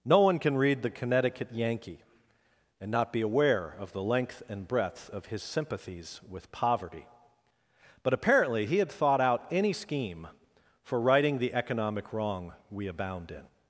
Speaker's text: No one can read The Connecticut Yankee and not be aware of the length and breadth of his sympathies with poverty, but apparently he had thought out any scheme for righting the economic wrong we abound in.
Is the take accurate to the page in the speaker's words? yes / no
yes